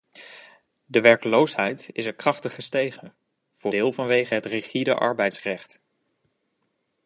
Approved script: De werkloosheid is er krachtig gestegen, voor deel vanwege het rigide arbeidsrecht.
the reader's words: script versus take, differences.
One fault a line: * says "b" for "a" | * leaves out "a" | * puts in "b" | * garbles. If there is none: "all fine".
all fine